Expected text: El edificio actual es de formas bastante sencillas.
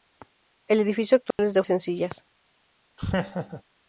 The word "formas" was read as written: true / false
false